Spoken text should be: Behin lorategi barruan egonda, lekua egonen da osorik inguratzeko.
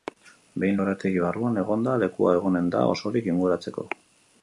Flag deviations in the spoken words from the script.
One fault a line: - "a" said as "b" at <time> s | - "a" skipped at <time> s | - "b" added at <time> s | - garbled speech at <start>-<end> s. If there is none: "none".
none